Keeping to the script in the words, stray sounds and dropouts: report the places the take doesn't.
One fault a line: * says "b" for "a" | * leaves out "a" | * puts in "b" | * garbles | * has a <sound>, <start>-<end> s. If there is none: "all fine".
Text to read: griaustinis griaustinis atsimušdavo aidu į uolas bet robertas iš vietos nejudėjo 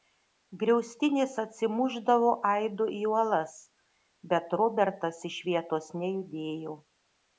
* leaves out "griaustinis"